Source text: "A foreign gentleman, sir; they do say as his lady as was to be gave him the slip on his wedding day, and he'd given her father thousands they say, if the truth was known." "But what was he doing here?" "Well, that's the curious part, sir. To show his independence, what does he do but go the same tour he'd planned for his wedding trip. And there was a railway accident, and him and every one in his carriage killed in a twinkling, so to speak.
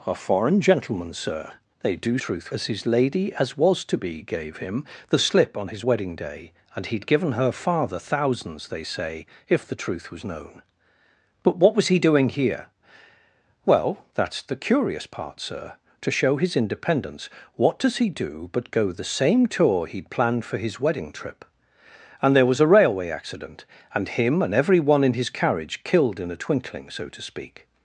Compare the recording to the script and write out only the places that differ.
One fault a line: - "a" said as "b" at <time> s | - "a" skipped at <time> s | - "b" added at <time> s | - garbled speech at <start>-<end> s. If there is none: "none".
- "say" said as "truth" at 2.2 s